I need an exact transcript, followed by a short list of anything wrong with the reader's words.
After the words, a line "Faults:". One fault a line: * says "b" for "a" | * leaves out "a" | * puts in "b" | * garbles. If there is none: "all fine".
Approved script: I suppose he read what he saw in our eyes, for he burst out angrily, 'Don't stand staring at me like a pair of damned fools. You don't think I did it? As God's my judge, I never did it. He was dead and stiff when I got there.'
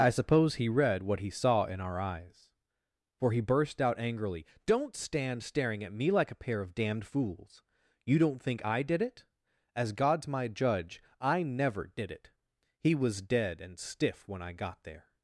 I suppose he read what he saw in our eyes, for he burst out angrily, 'Don't stand staring at me like a pair of damned fools. You don't think I did it? As God's my judge, I never did it. He was dead and stiff when I got there.'
Faults:
all fine